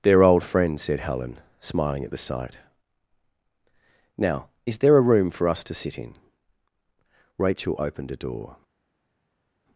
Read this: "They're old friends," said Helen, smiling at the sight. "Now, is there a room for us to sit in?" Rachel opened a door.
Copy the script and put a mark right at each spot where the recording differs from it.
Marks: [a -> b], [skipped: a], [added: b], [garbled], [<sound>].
"They're old friends," said Helen, smiling at the sight. "Now, is there a room for us to sit in?" Rachel opened a door.